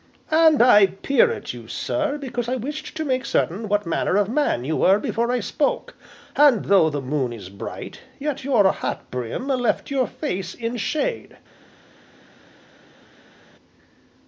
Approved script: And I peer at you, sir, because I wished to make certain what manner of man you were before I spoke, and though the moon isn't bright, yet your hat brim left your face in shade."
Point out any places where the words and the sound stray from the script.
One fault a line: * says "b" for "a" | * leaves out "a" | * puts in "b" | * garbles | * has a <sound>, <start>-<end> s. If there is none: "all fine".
* says "is" for "isn't"